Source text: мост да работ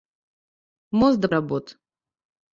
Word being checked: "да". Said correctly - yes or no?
yes